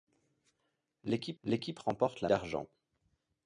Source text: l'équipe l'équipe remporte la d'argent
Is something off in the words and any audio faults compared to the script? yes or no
no